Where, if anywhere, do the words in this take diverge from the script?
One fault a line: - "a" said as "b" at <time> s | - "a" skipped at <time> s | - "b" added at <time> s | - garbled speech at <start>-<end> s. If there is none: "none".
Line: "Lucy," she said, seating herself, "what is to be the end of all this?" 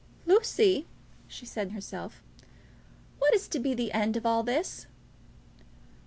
- "seating" skipped at 1.7 s